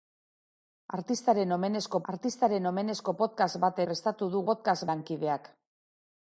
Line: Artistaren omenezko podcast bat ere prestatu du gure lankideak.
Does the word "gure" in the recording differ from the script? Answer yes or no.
yes